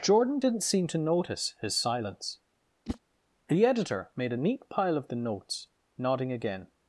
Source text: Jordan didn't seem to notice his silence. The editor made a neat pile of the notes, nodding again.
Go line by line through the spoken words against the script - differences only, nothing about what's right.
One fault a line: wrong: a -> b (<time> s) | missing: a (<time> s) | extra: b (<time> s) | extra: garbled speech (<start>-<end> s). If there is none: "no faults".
no faults